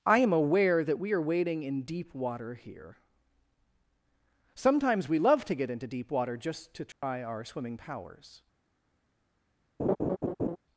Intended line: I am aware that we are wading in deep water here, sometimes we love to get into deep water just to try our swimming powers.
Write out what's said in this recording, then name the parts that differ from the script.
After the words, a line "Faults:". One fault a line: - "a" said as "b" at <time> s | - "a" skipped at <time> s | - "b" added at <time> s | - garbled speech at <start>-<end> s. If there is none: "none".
I am aware that we are wading in deep water here, sometimes we love to get into deep water just to try our swimming powers.
Faults:
none